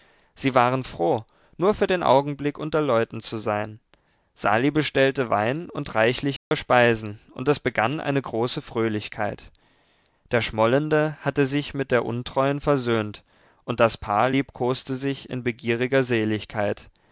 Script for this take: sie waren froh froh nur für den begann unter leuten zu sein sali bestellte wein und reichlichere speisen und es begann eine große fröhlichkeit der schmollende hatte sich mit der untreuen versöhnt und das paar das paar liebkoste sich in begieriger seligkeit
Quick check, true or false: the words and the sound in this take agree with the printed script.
false